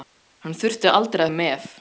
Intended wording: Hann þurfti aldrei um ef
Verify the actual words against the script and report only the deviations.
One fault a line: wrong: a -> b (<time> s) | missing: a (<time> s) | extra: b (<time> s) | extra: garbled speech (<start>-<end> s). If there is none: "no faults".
no faults